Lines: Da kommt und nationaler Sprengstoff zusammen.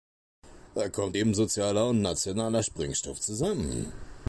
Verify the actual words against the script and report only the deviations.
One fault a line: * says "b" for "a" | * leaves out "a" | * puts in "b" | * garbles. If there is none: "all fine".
* puts in "eben sozialer"